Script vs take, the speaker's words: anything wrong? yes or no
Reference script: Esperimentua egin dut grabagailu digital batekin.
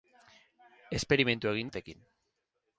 yes